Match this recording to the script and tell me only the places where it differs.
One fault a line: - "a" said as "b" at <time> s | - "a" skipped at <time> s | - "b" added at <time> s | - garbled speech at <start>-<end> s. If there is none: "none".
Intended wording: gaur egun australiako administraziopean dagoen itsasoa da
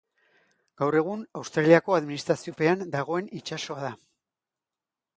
none